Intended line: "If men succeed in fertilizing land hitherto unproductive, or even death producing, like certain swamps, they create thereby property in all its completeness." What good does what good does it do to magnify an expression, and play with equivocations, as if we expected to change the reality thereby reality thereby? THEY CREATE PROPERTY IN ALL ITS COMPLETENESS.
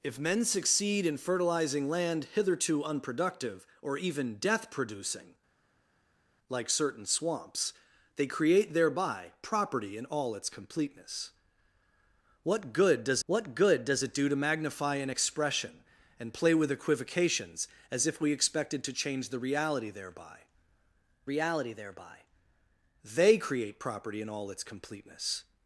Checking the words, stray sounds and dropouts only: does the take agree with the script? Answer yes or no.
yes